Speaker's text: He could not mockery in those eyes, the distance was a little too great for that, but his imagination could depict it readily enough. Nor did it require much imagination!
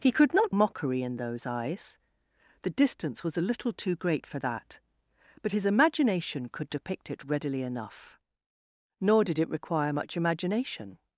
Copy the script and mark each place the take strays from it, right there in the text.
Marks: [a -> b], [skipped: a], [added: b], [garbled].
He could not mockery in those eyes, the distance was a little too great for that, but his imagination could depict it readily enough. Nor did it require much imagination!